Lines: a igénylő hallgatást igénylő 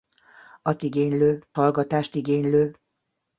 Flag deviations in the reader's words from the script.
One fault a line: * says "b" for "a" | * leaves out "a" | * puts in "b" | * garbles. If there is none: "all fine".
all fine